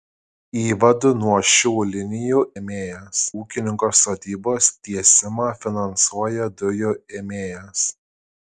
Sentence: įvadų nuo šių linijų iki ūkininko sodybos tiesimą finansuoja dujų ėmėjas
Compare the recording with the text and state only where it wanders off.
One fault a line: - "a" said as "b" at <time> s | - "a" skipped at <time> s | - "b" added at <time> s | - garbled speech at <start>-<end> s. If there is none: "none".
- "iki" said as "ėmėjas" at 2.6 s